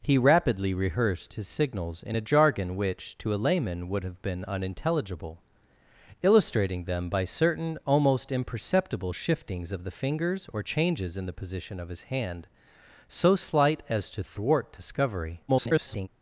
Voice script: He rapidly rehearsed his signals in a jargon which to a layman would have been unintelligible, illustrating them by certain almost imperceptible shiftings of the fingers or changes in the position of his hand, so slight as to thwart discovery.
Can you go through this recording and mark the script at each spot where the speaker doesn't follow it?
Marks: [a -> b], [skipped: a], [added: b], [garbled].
He rapidly rehearsed his signals in a jargon which to a layman would have been unintelligible, illustrating them by certain almost imperceptible shiftings of the fingers or changes in the position of his hand, so slight as to thwart discovery. [garbled]